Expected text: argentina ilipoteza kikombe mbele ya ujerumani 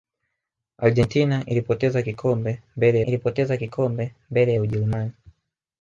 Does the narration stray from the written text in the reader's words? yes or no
yes